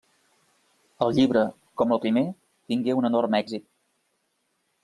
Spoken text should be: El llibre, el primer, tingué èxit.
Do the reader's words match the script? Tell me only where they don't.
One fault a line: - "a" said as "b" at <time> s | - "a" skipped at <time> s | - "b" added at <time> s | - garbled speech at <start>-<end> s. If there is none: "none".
- "com" added at 1.8 s
- "un enorme" added at 3.0 s